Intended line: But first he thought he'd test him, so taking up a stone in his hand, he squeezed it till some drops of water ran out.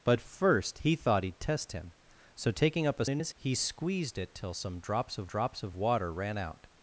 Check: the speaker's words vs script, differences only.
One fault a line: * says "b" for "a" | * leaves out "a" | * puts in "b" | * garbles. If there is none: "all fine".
* leaves out "stone"
* leaves out "hand"
* puts in "drops of"